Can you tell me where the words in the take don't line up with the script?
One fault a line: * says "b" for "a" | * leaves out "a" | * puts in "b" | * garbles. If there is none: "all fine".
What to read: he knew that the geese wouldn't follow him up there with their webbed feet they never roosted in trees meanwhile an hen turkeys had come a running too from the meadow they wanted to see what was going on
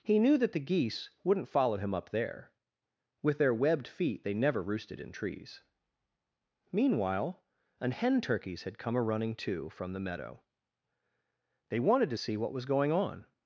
all fine